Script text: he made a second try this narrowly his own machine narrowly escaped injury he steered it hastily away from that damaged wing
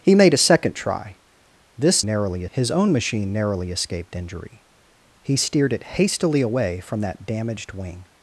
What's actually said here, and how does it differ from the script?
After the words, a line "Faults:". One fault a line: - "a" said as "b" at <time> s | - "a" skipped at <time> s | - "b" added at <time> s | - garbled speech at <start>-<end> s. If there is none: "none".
he made a second try this narrowly his own machine narrowly escaped injury he steered it hastily away from that damaged wing
Faults:
none